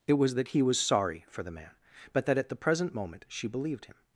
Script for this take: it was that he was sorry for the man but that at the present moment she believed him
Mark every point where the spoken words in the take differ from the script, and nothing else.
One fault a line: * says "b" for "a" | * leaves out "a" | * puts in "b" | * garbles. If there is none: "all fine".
all fine